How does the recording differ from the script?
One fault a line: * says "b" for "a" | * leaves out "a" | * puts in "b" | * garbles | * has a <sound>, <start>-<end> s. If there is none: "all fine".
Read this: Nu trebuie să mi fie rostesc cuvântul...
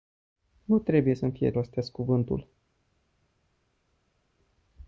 all fine